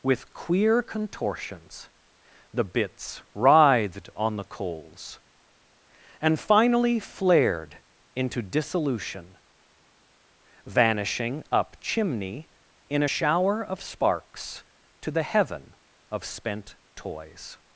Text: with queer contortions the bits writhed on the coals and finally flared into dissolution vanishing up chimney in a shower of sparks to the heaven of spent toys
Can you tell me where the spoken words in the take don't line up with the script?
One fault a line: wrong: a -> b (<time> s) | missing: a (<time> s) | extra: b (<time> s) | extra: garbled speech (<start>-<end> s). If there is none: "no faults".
no faults